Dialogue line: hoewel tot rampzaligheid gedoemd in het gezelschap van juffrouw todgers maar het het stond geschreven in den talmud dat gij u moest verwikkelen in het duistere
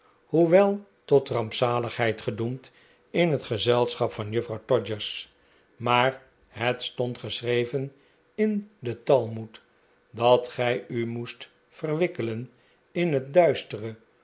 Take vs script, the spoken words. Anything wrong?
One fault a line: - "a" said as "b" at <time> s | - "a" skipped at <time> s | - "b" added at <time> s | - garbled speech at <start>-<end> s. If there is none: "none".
- "het" skipped at 6.8 s